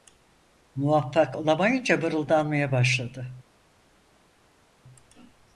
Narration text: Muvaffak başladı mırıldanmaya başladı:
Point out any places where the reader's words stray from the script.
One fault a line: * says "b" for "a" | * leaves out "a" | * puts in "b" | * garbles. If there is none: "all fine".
* says "olamayınca" for "başladı"